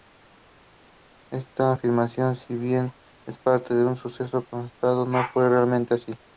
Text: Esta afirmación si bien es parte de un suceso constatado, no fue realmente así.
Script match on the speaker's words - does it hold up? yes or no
yes